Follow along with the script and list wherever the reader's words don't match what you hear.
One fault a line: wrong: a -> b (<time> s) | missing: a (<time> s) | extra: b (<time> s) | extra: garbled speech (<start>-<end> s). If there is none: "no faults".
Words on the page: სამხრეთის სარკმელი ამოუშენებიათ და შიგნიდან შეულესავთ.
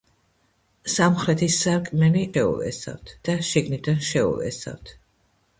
wrong: ამოუშენებიათ -> შეულესავთ (2.3 s)